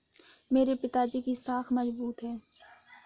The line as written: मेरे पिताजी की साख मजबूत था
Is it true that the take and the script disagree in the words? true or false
true